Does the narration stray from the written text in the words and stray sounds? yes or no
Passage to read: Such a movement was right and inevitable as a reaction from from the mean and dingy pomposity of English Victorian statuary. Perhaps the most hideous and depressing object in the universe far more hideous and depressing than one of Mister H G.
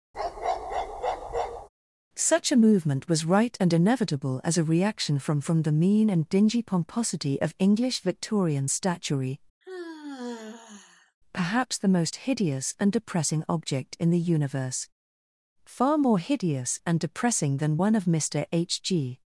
yes